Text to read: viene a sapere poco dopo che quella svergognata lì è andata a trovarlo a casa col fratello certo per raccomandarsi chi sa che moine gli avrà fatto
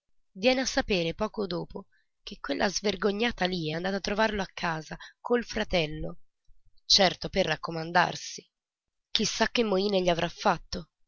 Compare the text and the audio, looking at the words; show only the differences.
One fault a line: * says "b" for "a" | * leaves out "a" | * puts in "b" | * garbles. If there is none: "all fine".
all fine